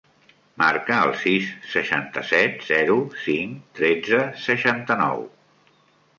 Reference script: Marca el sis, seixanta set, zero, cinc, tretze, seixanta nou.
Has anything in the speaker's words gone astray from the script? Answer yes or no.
no